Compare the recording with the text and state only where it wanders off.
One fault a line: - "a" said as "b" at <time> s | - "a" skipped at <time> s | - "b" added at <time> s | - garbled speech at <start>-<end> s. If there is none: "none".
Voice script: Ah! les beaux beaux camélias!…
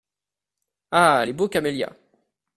- "beaux" skipped at 1.5 s